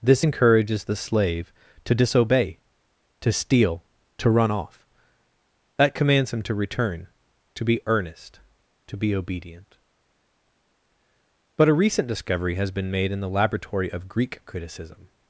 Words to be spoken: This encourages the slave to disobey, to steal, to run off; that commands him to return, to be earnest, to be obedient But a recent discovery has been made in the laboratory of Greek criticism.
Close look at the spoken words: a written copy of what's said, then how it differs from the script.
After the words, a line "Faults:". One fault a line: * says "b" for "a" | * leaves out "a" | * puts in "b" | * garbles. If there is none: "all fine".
This encourages the slave to disobey, to steal, to run off; that commands him to return, to be earnest, to be obedient But a recent discovery has been made in the laboratory of Greek criticism.
Faults:
all fine